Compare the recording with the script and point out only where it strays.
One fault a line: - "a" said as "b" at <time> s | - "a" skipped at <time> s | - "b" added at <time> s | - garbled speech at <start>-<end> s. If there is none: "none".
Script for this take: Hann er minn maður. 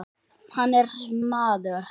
- "minn" skipped at 0.9 s